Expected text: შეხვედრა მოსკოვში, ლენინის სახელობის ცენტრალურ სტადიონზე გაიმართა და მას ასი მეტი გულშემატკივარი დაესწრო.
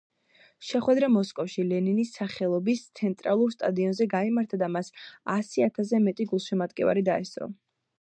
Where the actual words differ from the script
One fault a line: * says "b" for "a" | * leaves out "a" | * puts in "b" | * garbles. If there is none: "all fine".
* puts in "ათასზე"